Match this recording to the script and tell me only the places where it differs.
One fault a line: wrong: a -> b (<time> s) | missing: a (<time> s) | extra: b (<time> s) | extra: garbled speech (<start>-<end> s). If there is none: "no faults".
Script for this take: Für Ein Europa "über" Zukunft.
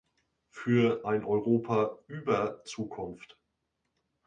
no faults